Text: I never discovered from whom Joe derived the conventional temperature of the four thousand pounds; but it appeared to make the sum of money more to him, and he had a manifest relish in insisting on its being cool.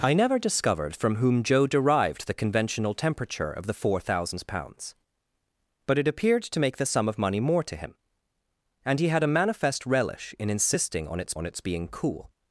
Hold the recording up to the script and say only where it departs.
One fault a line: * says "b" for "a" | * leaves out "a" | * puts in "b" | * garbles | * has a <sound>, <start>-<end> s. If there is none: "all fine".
* puts in "on its"